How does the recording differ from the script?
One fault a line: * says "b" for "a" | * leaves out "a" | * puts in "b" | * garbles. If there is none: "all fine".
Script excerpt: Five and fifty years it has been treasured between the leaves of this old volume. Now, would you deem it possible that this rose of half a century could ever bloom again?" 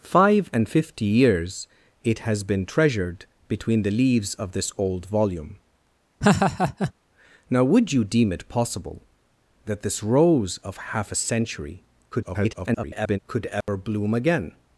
* garbles